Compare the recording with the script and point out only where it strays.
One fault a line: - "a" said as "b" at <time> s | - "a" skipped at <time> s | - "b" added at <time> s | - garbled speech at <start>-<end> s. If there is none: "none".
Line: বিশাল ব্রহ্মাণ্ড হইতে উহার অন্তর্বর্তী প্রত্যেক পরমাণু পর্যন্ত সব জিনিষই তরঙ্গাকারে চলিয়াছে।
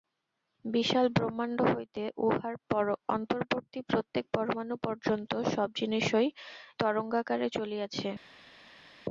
none